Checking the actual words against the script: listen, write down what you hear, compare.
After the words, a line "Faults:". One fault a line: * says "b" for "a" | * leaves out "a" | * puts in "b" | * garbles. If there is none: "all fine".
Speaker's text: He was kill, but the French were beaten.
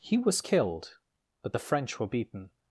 He was killed, but the French were beaten.
Faults:
* says "killed" for "kill"